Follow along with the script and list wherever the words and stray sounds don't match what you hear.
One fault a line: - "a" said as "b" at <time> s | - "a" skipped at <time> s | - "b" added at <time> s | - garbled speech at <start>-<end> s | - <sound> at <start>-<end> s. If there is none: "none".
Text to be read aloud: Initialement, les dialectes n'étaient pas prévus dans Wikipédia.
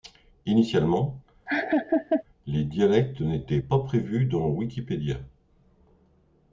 - laugh at 1.5-2.2 s